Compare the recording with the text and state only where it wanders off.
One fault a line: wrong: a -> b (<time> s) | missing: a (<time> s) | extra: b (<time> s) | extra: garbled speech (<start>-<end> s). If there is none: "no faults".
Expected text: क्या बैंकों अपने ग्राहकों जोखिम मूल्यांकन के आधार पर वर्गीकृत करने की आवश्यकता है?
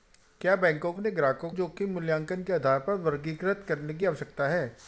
no faults